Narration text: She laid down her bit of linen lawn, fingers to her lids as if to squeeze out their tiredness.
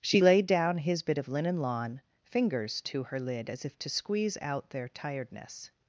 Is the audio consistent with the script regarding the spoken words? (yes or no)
no